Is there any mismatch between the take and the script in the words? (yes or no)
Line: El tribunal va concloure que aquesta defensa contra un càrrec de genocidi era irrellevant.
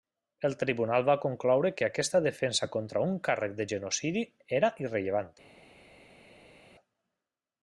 no